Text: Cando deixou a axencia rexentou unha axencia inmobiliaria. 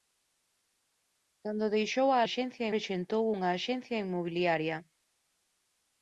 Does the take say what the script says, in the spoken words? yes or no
yes